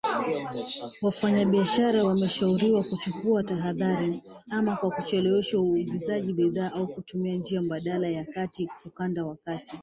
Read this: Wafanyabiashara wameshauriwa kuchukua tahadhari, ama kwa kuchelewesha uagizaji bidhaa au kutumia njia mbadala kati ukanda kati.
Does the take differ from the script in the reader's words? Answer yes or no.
yes